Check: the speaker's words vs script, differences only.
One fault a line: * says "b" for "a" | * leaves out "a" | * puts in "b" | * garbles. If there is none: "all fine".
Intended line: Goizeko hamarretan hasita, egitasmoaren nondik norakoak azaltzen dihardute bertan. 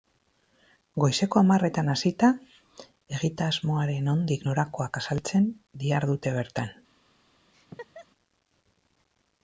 all fine